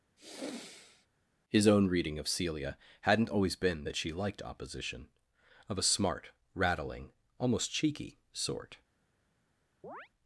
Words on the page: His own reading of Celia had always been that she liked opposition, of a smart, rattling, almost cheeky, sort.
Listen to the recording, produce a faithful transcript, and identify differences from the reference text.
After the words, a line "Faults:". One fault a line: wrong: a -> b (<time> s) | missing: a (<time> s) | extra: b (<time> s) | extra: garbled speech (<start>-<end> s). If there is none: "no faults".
His own reading of Celia hadn't always been that she liked opposition, of a smart, rattling, almost cheeky, sort.
Faults:
wrong: had -> hadn't (3.0 s)